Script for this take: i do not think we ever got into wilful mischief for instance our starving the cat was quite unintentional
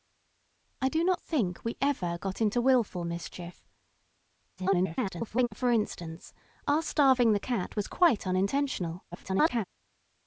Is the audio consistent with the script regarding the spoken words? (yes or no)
no